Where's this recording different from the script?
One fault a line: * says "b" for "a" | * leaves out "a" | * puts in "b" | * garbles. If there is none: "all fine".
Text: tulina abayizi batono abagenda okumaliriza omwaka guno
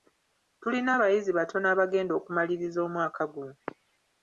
all fine